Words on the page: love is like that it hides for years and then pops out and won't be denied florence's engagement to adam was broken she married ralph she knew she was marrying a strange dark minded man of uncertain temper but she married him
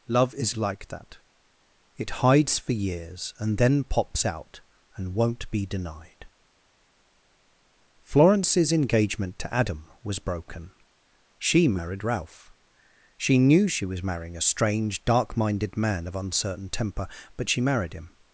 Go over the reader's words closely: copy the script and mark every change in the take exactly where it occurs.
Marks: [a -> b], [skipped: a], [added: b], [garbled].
love is like that it hides for years and then pops out and won't be denied florence's engagement to adam was broken she married ralph she knew she was marrying a strange dark minded man of uncertain temper but she married him